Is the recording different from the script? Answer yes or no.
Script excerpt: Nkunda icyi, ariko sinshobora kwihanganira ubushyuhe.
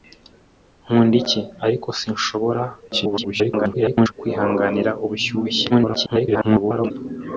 yes